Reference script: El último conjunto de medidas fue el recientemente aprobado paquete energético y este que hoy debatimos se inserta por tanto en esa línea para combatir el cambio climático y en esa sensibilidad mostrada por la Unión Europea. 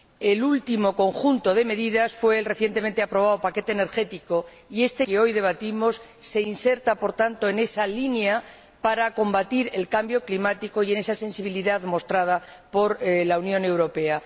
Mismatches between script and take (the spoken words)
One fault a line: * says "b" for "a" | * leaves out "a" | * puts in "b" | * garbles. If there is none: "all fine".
all fine